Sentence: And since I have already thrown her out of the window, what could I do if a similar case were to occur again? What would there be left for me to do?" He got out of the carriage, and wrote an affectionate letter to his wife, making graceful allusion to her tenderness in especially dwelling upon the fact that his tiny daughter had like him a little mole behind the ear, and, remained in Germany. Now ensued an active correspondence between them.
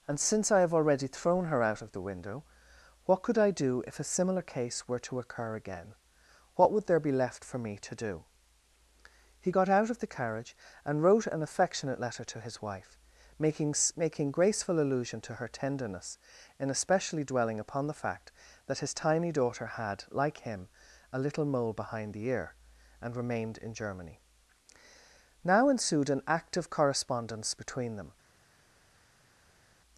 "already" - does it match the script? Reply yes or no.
yes